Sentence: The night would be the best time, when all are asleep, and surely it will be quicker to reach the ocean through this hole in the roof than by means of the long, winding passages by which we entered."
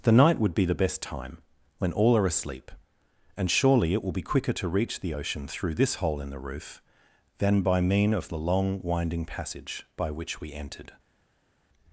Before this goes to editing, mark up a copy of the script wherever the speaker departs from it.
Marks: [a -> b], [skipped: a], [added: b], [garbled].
The night would be the best time, when all are asleep, and surely it will be quicker to reach the ocean through this hole in the roof than by [means -> mean] of the long, winding [passages -> passage] by which we entered."